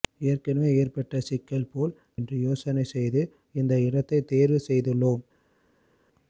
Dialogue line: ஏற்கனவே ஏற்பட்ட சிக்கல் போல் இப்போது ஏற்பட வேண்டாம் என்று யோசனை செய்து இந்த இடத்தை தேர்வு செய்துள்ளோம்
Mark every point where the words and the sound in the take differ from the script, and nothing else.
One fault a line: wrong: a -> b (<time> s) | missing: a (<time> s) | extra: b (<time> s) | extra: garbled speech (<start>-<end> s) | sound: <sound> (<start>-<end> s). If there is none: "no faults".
missing: இப்போது ஏற்பட வேண்டாம் (1.9 s)